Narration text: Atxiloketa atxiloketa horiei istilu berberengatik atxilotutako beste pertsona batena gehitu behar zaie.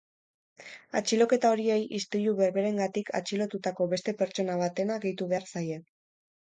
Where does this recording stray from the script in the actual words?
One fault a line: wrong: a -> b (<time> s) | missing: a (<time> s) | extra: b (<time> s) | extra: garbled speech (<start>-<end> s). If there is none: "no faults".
missing: atxiloketa (1.5 s)